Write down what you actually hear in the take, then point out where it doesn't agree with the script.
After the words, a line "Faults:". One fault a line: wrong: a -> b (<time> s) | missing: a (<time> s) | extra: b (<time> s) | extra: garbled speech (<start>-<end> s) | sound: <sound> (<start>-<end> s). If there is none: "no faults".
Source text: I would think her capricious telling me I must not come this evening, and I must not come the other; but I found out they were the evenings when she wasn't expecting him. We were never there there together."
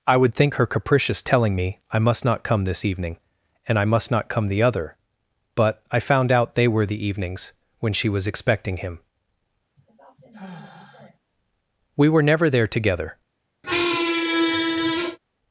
I would think her capricious telling me I must not come this evening, and I must not come the other; but I found out they were the evenings when she was expecting him. We were never there together."
Faults:
wrong: wasn't -> was (8.1 s)
sound: sigh (9.8-11.2 s)
missing: there (12.7 s)
sound: squeak (13.6-15.2 s)